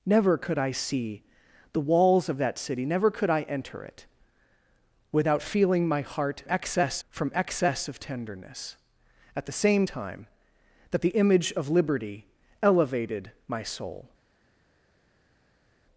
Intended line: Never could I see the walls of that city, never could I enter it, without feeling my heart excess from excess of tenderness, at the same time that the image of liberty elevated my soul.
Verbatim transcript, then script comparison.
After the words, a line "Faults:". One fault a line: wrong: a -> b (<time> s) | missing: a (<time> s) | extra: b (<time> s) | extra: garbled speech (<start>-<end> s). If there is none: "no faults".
Never could I see the walls of that city, never could I enter it, without feeling my heart excess from excess of tenderness, at the same time that the image of liberty elevated my soul.
Faults:
no faults